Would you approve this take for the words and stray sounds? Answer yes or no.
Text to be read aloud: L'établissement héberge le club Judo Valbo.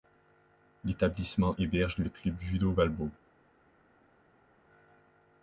yes